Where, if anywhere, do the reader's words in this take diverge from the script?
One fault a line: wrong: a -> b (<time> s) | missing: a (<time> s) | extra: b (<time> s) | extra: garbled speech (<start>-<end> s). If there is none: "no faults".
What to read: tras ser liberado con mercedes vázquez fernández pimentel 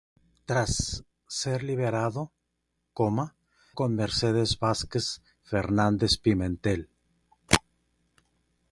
no faults